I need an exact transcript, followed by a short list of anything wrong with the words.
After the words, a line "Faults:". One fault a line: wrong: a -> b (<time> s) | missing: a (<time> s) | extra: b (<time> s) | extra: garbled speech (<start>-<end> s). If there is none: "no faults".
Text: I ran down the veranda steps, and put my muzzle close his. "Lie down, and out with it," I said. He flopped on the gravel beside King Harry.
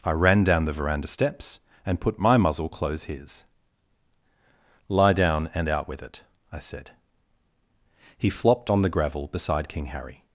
I ran down the veranda steps, and put my muzzle close his. "Lie down, and out with it," I said. He flopped on the gravel beside King Harry.
Faults:
no faults